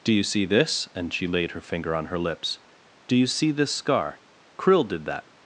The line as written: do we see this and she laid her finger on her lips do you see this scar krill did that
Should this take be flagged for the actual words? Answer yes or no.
yes